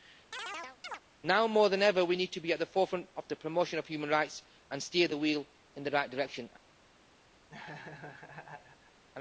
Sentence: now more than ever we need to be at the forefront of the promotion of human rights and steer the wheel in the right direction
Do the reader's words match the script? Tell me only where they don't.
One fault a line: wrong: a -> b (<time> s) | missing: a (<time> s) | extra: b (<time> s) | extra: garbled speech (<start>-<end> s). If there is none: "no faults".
no faults